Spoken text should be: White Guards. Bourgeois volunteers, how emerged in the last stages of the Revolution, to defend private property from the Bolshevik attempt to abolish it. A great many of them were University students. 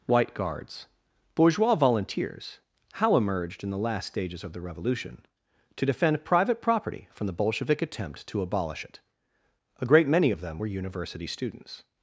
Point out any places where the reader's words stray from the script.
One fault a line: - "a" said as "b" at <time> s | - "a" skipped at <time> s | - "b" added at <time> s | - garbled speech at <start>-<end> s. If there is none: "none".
none